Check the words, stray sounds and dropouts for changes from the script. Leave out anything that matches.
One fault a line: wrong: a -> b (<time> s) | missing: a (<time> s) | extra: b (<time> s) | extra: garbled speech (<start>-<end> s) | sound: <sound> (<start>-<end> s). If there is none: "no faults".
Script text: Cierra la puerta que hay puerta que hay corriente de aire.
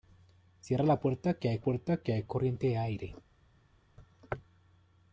no faults